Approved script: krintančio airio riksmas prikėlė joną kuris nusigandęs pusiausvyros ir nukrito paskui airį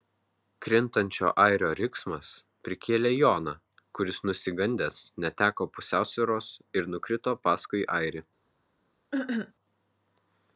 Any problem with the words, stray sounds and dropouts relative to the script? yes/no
yes